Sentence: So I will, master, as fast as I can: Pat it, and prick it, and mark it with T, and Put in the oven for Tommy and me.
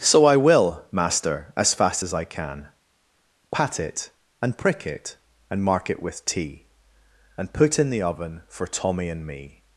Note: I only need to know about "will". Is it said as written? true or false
true